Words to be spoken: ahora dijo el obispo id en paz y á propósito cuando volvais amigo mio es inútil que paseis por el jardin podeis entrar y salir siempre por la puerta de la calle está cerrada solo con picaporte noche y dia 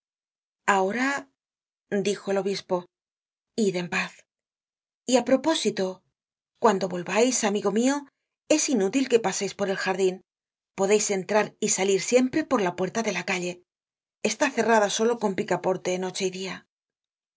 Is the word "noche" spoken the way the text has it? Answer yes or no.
yes